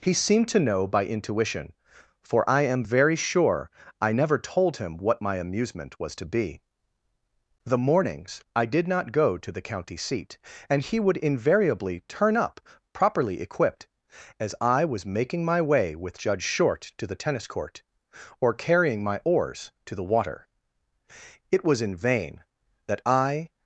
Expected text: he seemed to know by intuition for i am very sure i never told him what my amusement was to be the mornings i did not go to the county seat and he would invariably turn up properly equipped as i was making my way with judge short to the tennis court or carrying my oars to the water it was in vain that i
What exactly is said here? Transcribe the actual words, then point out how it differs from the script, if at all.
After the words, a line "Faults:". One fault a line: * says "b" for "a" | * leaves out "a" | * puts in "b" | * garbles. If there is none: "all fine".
he seemed to know by intuition for i am very sure i never told him what my amusement was to be the mornings i did not go to the county seat and he would invariably turn up properly equipped as i was making my way with judge short to the tennis court or carrying my oars to the water it was in vain that i
Faults:
all fine